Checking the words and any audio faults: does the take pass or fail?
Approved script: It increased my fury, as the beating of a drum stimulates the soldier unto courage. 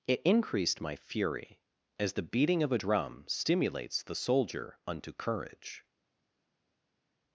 pass